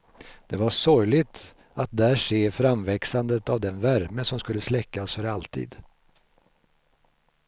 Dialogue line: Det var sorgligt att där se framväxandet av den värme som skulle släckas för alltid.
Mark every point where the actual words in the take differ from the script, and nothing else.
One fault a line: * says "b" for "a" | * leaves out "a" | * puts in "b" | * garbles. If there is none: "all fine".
all fine